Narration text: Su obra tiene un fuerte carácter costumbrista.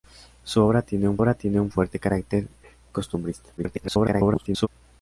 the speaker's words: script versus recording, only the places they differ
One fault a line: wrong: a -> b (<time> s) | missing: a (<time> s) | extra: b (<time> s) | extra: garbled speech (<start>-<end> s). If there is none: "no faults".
extra: obra tiene un (1.2 s)
extra: garbled speech (3.6-4.7 s)